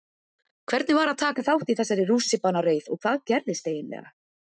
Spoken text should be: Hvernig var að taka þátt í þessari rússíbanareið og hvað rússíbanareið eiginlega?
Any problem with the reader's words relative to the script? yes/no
yes